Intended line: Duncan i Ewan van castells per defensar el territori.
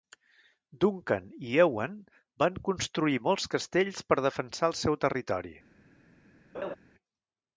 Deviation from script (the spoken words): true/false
true